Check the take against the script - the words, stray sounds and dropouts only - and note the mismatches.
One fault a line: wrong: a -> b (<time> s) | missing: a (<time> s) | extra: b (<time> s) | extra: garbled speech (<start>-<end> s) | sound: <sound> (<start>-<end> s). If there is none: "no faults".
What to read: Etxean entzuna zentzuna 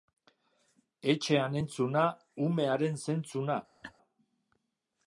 extra: umearen (2.5 s)
sound: laugh (3.8-3.9 s)